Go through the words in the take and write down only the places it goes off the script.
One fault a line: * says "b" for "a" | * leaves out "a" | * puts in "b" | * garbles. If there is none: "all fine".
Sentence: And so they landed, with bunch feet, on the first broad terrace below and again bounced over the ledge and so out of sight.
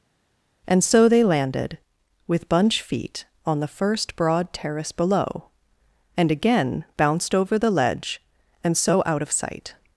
all fine